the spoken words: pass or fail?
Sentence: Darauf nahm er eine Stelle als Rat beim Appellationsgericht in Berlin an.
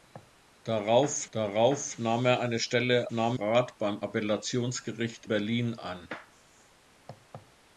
fail